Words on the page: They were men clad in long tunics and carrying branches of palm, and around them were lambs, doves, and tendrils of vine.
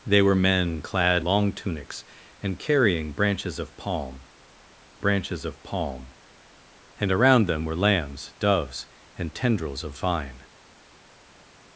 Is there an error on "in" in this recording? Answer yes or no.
yes